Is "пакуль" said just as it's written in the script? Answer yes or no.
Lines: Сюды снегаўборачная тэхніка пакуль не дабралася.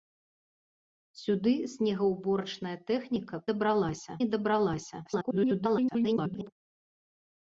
no